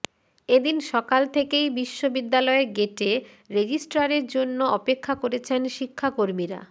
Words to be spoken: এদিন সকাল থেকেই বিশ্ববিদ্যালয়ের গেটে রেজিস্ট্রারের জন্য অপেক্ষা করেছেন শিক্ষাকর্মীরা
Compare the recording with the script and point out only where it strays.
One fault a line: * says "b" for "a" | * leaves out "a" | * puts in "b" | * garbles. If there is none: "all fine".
all fine